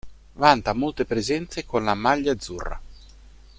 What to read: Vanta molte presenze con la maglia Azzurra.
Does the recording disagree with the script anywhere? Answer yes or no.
no